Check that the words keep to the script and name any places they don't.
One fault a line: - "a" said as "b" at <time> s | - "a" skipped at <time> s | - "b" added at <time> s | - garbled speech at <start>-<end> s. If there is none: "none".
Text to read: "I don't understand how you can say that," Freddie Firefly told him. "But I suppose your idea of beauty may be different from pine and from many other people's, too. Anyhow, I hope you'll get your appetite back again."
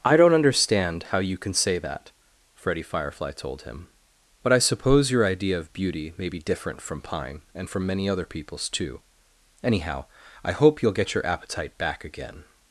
none